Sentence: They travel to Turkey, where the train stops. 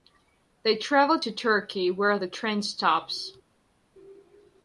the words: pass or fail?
pass